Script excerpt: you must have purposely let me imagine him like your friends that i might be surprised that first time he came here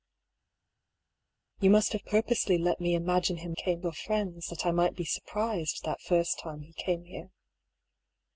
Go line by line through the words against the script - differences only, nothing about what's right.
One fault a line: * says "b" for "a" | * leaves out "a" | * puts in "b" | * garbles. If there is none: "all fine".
* says "came" for "like"